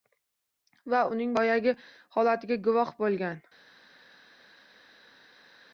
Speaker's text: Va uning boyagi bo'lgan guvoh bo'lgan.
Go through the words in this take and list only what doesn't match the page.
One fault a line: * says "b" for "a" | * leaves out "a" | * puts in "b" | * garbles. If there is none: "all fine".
* says "holatiga" for "bo'lgan"